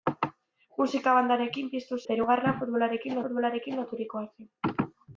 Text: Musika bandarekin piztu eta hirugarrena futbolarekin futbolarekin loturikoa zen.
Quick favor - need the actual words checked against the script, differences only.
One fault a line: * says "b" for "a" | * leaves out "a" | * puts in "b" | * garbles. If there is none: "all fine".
all fine